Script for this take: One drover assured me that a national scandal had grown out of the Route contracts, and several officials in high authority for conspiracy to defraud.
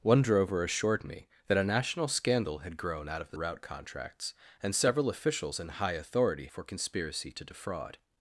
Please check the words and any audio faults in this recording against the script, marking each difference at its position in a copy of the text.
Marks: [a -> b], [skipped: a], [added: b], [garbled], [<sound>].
One drover assured me that a national scandal had grown out of the Route contracts, and several officials in high authority for conspiracy to defraud.